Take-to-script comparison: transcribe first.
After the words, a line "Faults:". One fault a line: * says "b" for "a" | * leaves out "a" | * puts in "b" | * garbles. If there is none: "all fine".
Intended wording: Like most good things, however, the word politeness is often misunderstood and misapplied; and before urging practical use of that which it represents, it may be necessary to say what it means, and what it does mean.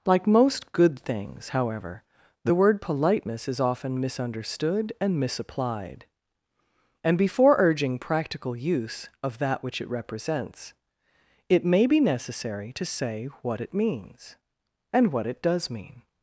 Like most good things, however, the word politeness is often misunderstood and misapplied; and before urging practical use of that which it represents, it may be necessary to say what it means, and what it does mean.
Faults:
all fine